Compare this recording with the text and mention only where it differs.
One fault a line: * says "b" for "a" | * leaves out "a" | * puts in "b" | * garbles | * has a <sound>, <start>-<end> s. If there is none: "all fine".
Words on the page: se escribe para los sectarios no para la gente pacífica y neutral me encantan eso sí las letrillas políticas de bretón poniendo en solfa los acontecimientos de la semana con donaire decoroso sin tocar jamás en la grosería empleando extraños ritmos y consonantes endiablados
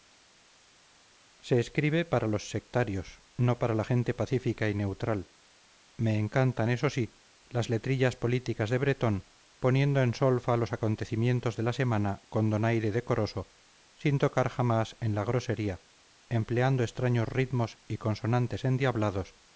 all fine